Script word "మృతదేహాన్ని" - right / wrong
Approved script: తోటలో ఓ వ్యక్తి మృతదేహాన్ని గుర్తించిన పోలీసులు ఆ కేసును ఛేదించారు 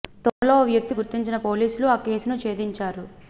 wrong